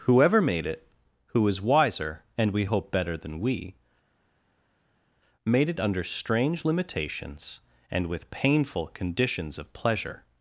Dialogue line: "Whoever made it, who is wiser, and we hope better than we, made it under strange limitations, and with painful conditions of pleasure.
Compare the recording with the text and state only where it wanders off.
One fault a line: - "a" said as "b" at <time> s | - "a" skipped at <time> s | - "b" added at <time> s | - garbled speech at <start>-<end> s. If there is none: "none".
none